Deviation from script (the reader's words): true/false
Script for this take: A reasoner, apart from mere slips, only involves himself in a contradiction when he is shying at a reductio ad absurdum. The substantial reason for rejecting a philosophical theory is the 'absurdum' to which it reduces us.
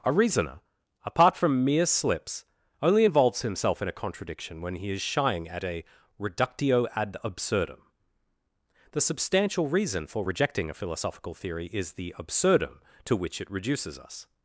false